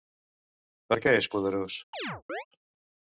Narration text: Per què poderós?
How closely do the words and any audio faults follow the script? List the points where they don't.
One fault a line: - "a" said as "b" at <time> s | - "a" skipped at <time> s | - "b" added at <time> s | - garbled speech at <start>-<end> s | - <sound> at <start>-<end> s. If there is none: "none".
- "és" added at 1.2 s
- chirp at 1.9-2.5 s